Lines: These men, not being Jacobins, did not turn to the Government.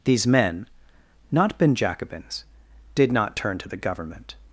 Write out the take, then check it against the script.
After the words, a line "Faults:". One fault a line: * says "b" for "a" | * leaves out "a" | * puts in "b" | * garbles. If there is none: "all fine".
These men, not been Jacobins, did not turn to the Government.
Faults:
* says "been" for "being"